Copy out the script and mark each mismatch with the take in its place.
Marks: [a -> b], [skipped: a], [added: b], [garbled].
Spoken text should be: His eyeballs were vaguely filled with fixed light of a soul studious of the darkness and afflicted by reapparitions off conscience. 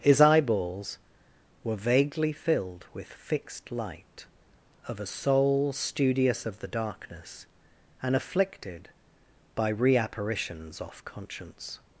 His eyeballs were vaguely filled with fixed light of a soul studious of the darkness and afflicted by reapparitions off conscience.